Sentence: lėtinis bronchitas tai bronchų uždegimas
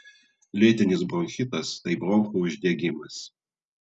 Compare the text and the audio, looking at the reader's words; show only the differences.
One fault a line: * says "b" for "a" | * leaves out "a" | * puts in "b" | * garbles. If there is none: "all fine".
all fine